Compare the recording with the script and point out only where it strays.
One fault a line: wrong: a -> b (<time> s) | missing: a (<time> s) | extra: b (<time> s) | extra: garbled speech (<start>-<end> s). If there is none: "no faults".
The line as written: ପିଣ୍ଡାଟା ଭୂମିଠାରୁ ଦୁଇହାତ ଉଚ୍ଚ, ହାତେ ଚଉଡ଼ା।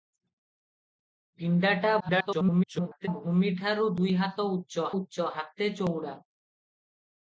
extra: garbled speech (2.0-3.1 s)
extra: ଉଚ୍ଚ (4.9 s)